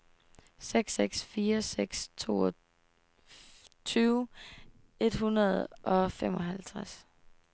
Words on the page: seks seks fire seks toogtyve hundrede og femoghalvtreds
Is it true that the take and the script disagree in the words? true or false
true